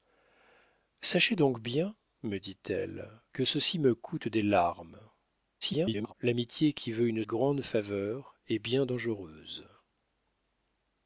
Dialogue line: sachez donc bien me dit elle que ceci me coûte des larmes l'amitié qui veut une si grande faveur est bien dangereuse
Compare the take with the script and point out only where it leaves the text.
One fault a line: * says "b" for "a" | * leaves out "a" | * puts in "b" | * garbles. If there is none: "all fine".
* garbles
* leaves out "si"